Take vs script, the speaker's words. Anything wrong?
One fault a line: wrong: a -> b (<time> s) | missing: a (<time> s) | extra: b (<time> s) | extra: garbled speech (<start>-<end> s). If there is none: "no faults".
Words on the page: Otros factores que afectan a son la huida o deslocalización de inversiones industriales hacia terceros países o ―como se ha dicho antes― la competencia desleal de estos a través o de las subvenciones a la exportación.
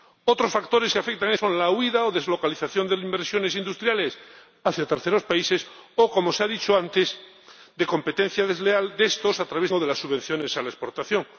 no faults